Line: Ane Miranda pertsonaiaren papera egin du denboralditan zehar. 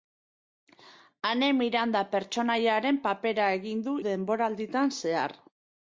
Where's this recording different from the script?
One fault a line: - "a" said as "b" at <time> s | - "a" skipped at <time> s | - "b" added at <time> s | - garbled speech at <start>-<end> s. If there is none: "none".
none